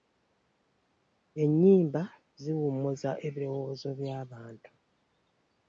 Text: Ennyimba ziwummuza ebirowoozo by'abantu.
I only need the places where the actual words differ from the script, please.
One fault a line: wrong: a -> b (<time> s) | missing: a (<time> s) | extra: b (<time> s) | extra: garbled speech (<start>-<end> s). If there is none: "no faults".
no faults